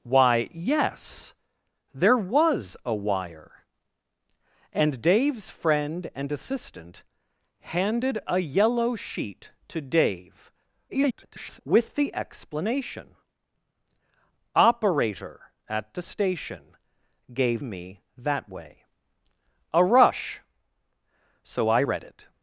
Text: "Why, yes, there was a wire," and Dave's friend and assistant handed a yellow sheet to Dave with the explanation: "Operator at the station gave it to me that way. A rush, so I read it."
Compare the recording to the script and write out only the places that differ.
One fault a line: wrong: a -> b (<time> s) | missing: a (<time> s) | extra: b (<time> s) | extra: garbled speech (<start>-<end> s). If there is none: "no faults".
extra: garbled speech (10.9-11.6 s)
missing: it to (17.6 s)